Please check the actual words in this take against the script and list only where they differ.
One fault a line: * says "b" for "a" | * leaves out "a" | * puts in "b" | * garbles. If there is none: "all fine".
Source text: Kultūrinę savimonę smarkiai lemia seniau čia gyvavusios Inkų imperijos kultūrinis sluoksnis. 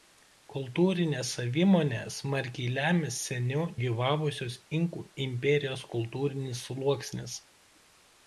* leaves out "čia"